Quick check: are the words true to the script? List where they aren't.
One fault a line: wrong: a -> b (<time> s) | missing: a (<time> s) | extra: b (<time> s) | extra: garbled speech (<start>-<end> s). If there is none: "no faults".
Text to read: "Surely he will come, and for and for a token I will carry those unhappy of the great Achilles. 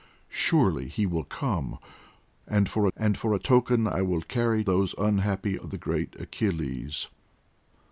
no faults